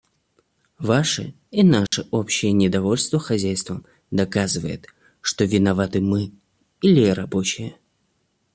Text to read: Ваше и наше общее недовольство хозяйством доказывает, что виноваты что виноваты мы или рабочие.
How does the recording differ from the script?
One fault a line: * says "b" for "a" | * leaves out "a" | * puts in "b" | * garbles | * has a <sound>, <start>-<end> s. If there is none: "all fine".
* has a dropout, 1.9-1.9 s
* leaves out "что виноваты"